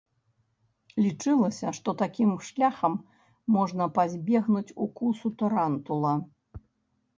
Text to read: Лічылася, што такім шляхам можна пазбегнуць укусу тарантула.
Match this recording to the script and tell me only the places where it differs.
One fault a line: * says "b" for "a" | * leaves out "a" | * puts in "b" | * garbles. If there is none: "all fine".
all fine